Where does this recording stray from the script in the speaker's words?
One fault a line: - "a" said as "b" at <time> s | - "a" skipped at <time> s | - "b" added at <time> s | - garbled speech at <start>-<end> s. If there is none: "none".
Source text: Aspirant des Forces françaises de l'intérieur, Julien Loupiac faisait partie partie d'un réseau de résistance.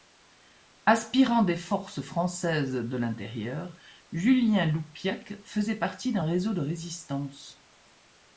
- "partie" skipped at 6.1 s